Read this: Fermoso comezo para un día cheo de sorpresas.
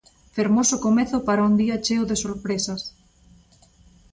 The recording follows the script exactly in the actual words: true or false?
true